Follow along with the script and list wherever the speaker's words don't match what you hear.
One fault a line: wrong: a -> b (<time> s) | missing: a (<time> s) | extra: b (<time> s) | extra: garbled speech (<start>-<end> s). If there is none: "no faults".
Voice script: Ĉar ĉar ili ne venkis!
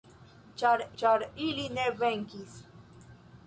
no faults